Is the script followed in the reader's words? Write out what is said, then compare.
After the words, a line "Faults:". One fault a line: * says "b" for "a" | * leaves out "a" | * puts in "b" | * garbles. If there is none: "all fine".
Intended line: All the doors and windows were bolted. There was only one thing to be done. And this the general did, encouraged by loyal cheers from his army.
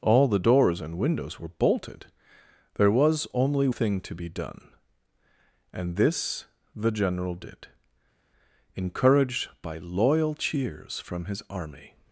All the doors and windows were bolted. There was only thing to be done. And this the general did, encouraged by loyal cheers from his army.
Faults:
* leaves out "one"